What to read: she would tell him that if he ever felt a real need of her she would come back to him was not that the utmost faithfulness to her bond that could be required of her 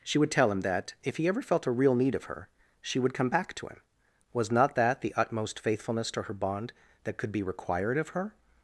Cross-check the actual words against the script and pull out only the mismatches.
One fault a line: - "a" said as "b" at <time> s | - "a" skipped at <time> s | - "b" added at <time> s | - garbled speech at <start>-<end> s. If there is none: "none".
none